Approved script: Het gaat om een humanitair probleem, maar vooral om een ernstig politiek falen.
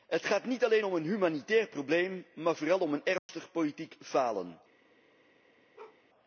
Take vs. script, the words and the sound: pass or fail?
fail